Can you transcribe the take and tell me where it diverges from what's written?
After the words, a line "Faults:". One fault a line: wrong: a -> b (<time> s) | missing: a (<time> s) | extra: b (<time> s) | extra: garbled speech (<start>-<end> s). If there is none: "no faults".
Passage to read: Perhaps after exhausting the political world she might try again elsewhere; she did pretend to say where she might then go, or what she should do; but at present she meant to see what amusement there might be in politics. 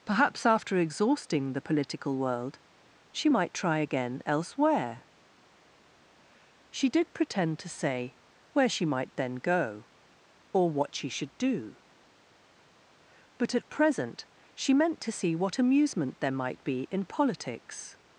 Perhaps after exhausting the political world she might try again elsewhere; she did pretend to say where she might then go, or what she should do; but at present she meant to see what amusement there might be in politics.
Faults:
no faults